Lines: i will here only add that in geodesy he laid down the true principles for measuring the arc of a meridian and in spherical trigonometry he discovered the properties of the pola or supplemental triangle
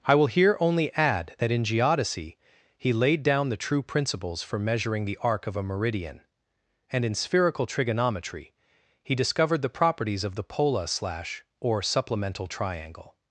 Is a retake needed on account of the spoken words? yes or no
yes